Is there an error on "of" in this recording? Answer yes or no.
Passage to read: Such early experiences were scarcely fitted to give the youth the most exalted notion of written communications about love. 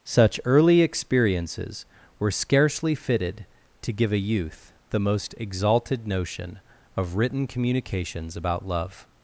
no